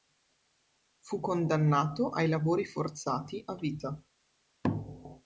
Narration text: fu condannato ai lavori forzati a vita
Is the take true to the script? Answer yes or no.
yes